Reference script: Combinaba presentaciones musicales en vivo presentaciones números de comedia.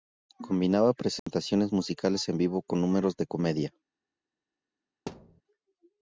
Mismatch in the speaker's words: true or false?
true